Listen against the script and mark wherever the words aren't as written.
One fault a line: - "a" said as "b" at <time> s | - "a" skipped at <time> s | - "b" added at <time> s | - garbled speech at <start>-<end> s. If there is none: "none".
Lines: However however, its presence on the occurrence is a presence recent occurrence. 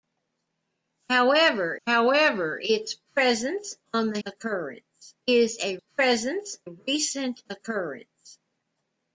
none